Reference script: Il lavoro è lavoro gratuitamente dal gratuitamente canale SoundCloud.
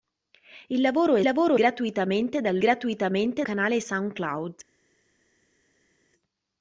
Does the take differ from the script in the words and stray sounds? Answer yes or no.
no